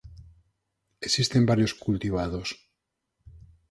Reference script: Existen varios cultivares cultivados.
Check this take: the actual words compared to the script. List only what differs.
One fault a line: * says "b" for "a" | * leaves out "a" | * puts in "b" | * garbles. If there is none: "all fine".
* leaves out "cultivares"